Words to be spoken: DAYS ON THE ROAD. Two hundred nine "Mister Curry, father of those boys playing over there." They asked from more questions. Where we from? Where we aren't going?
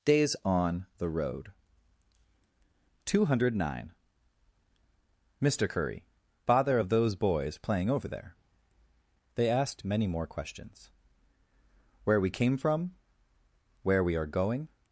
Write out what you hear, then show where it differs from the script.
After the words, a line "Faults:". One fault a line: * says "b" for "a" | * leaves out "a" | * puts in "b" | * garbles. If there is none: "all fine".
DAYS ON THE ROAD. Two hundred nine "Mister Curry, father of those boys playing over there." They asked many more questions. Where we came from? Where we are going?
Faults:
* says "many" for "from"
* puts in "came"
* says "are" for "aren't"